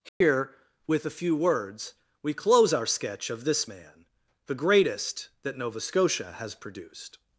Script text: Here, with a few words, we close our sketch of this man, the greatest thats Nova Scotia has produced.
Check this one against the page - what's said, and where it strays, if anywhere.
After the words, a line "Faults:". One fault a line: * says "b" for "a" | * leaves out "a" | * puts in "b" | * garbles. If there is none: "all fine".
Here, with a few words, we close our sketch of this man, the greatest that Nova Scotia has produced.
Faults:
* says "that" for "thats"